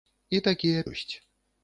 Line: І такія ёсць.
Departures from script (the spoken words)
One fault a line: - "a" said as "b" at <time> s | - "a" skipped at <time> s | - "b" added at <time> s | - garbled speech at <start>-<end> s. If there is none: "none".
none